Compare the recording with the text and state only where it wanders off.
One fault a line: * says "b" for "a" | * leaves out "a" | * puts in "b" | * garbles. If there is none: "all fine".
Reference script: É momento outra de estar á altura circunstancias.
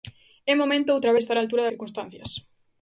all fine